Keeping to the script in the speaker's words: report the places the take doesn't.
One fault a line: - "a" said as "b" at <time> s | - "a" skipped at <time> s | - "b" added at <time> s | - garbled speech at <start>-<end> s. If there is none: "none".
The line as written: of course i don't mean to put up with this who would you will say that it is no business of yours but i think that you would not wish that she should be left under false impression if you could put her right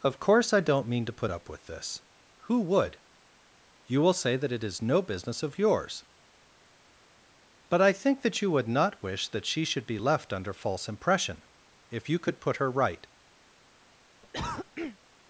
none